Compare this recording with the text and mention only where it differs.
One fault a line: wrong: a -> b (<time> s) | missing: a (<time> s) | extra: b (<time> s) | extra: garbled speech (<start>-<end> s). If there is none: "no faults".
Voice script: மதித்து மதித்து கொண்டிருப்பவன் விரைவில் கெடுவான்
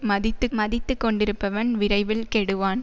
no faults